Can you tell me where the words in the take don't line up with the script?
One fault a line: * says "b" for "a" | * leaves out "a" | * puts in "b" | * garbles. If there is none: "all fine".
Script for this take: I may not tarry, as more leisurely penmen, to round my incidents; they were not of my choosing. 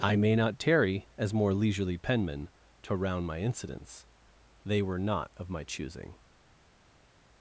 all fine